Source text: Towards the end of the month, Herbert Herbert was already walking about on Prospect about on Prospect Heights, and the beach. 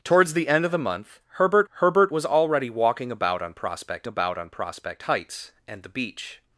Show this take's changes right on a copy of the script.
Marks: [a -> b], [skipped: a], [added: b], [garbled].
Towards the end of the month, Herbert Herbert was already walking about on Prospect about on Prospect Heights, and the beach.